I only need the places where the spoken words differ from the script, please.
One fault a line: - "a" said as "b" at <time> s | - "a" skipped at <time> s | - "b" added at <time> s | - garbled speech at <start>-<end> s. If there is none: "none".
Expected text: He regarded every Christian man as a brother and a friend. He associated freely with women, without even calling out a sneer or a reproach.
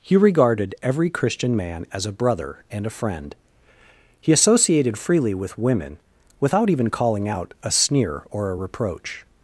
none